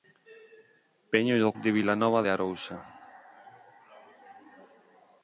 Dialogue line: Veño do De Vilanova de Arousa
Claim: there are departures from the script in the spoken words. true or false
false